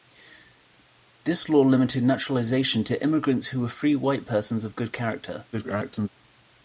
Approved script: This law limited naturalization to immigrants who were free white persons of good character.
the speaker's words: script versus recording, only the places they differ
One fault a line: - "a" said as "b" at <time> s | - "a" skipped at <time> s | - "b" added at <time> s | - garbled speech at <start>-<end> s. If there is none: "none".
- garbled speech at 5.5-6.1 s